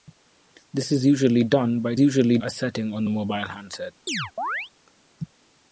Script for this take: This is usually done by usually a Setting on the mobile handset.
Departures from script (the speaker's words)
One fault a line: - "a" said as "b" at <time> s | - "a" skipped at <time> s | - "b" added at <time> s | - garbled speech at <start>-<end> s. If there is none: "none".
none